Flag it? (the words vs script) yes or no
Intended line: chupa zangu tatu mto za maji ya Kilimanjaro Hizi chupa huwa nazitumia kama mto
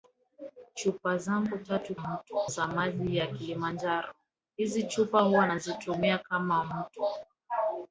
no